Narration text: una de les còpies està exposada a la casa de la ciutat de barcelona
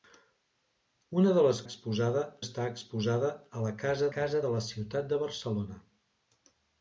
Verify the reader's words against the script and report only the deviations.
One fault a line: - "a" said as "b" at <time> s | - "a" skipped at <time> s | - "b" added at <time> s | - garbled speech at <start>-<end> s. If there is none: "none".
- "còpies" said as "exposada" at 1.7 s
- "casa" added at 4.2 s